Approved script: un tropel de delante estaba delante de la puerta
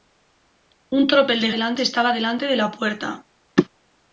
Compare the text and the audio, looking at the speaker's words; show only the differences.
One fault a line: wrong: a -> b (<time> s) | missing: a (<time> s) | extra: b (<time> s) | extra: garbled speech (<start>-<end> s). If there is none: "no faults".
no faults